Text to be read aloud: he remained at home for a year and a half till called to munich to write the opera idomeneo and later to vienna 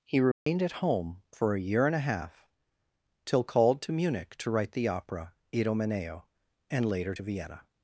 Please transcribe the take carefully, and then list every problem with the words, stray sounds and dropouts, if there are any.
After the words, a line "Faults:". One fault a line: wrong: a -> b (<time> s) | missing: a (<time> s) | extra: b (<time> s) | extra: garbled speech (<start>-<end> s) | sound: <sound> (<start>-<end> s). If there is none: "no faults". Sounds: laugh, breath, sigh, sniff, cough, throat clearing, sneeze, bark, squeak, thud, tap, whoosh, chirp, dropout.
he remained at home for a year and a half till called to munich to write the opera idomeneo and later to vienna
Faults:
sound: dropout (0.3-0.5 s)